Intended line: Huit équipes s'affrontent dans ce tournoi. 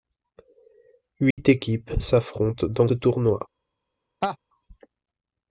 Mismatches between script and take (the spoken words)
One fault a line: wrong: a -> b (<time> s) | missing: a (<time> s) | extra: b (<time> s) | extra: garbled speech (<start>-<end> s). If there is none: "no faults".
missing: ce (2.9 s)